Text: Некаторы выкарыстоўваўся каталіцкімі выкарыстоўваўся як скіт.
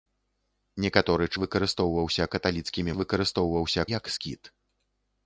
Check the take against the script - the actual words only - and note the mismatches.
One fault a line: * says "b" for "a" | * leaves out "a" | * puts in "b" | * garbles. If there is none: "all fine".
all fine